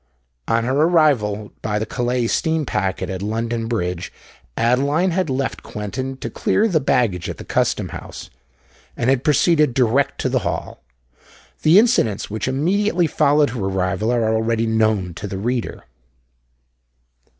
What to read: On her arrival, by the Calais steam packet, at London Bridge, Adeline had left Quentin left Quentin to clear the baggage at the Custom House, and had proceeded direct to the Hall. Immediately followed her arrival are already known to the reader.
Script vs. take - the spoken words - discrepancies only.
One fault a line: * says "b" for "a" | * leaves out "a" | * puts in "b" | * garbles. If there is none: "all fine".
* leaves out "left Quentin"
* puts in "The incidents which"